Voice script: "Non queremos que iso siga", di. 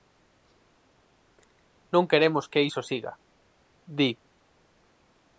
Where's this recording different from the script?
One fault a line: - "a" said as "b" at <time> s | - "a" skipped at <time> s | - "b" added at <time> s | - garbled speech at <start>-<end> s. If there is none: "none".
none